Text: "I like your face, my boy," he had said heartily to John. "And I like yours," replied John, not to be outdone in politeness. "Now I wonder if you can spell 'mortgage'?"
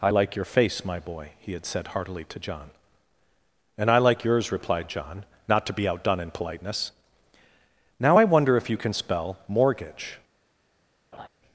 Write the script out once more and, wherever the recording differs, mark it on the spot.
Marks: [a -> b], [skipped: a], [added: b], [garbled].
"I like your face, my boy," he had said heartily to John. "And I like yours," replied John, not to be outdone in politeness. "Now I wonder if you can spell 'mortgage'?"